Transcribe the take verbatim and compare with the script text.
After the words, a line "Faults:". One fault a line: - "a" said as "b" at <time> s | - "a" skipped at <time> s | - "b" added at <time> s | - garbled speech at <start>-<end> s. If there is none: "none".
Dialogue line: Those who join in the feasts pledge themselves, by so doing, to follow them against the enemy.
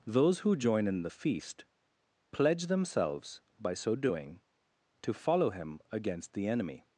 Those who join in the feast pledge themselves, by so doing, to follow him against the enemy.
Faults:
- "feasts" said as "feast" at 1.1 s
- "them" said as "him" at 5.5 s